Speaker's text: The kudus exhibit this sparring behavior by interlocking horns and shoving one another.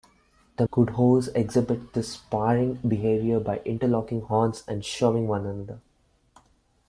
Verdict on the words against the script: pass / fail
pass